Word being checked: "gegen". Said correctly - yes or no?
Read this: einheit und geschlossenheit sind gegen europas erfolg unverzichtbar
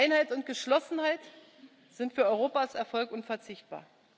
no